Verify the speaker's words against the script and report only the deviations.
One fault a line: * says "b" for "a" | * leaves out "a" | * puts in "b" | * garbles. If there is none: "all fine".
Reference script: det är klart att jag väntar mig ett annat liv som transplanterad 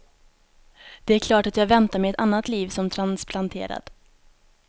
all fine